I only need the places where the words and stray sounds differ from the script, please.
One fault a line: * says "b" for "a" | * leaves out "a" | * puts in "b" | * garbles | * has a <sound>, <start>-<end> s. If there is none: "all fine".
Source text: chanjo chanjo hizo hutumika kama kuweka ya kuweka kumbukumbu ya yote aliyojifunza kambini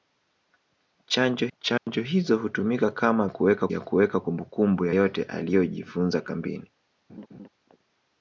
* has a dropout, 1.8-1.9 s
* has a laugh, 7.1-7.5 s